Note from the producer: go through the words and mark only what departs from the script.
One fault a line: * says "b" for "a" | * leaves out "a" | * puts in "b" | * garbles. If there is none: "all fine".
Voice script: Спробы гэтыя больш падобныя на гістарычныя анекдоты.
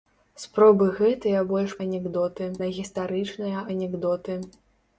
* says "анекдоты" for "падобныя"